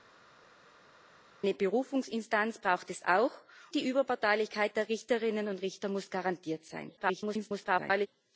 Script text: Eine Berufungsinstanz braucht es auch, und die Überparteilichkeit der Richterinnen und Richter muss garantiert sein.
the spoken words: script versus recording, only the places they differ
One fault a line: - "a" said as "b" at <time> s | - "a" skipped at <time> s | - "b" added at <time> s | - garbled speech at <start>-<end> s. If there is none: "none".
- "und" skipped at 3.3 s
- garbled speech at 7.0-8.1 s